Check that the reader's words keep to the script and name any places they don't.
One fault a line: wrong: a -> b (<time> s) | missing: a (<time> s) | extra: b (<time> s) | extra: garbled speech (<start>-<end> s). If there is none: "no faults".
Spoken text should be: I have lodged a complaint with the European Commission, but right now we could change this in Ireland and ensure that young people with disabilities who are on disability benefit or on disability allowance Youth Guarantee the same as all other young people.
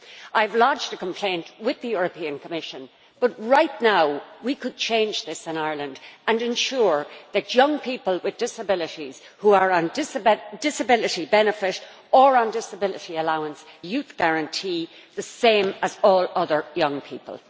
no faults